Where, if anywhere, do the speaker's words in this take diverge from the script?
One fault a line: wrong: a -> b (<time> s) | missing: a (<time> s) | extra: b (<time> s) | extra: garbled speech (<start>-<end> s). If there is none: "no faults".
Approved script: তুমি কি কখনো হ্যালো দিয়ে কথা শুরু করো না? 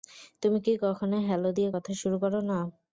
no faults